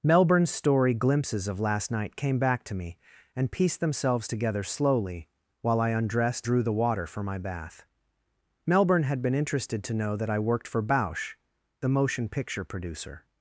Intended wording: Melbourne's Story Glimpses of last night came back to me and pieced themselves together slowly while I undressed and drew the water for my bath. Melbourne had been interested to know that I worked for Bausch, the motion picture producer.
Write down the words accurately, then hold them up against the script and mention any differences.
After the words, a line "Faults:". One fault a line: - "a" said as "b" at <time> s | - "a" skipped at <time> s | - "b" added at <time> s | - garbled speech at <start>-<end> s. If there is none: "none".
Melbourne's Story Glimpses of last night came back to me and pieced themselves together slowly while I undressed drew the water for my bath. Melbourne had been interested to know that I worked for Bausch, the motion picture producer.
Faults:
- "and" skipped at 6.5 s